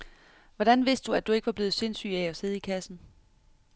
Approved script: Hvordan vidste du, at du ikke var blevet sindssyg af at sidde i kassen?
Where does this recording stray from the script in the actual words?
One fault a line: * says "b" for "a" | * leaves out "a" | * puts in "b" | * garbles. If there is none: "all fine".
all fine